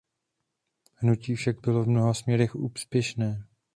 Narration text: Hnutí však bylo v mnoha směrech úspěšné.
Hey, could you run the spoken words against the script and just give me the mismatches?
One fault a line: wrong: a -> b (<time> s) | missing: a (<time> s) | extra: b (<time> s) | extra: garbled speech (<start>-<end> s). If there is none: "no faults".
no faults